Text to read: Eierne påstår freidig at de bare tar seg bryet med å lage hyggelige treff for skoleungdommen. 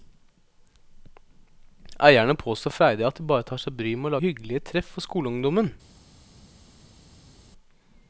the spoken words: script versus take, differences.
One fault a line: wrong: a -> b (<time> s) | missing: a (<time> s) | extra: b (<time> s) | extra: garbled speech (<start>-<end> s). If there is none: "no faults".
missing: lage (4.2 s)